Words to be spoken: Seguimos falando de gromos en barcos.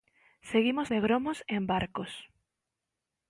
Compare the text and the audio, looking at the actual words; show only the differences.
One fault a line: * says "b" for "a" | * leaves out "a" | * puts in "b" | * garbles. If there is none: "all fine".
* leaves out "falando"